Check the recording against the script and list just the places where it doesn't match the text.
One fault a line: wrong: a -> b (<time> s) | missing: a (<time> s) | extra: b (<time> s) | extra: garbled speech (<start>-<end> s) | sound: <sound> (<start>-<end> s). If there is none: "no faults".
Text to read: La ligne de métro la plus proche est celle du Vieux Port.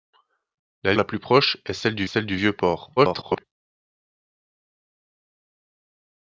missing: ligne de métro (0.9 s)
extra: celle du (2.0 s)
extra: garbled speech (3.0-3.4 s)